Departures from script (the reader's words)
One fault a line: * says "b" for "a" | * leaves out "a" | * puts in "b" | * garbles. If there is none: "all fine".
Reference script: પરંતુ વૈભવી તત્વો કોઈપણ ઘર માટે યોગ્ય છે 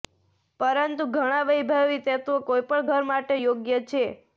* puts in "ઘણા"